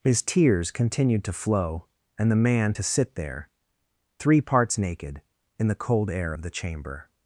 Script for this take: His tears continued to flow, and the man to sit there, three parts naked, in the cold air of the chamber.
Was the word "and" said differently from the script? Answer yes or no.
no